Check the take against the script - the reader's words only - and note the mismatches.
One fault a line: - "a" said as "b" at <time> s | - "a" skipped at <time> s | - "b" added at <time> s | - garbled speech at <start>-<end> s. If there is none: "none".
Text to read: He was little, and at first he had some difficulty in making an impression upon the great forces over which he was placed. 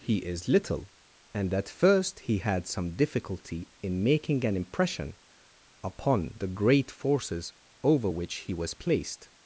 - "was" said as "is" at 0.2 s